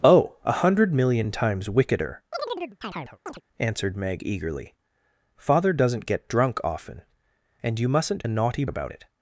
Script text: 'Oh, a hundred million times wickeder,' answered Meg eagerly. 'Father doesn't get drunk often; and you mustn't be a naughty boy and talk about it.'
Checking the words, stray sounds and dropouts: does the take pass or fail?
fail